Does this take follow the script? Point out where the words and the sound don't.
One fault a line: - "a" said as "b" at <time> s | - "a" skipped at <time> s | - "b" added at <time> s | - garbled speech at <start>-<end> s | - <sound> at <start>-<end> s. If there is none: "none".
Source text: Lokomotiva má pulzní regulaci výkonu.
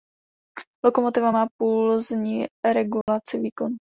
- dropout at 3.0-3.1 s